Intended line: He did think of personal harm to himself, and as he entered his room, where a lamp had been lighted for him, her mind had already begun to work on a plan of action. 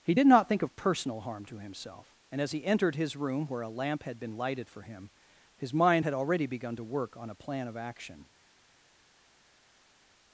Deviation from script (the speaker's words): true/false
true